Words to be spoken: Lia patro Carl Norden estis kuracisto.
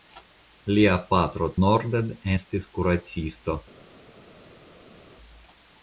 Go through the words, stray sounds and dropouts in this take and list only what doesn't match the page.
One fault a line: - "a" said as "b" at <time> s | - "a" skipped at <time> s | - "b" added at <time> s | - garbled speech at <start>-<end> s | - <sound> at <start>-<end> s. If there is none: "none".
- "Carl" skipped at 1.5 s